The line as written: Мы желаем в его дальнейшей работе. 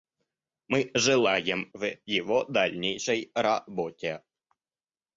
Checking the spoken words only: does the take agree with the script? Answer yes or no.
yes